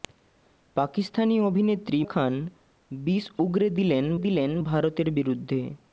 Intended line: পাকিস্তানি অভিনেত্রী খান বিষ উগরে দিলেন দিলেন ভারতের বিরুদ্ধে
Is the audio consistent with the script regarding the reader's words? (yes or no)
yes